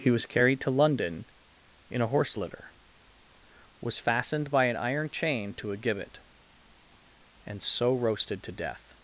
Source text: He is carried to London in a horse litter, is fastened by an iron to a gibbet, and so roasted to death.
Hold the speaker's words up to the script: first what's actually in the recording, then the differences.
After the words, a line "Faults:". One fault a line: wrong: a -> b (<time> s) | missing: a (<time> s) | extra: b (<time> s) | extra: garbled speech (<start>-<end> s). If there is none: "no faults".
He was carried to London in a horse litter, was fastened by an iron chain to a gibbet, and so roasted to death.
Faults:
wrong: is -> was (0.1 s)
wrong: is -> was (3.8 s)
extra: chain (5.1 s)